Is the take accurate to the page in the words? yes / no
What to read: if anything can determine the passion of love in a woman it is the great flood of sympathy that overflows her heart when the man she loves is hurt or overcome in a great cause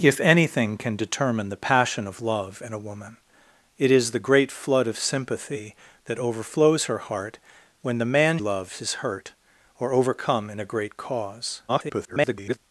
no